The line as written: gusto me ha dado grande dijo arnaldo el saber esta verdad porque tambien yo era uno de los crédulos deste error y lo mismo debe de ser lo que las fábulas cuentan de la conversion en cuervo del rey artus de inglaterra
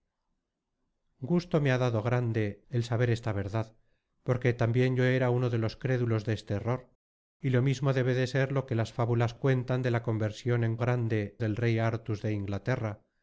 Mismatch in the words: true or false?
true